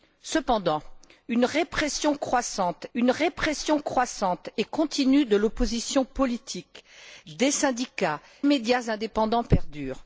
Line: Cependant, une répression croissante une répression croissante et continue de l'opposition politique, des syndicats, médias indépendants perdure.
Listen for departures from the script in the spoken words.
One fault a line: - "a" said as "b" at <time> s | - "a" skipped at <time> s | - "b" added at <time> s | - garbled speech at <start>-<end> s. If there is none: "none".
none